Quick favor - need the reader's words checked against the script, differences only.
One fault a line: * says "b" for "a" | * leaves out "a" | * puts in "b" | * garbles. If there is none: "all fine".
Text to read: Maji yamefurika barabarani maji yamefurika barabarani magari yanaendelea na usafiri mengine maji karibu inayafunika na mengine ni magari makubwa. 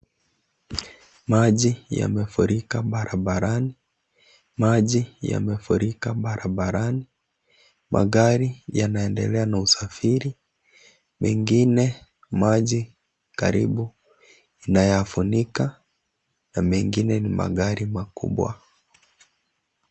all fine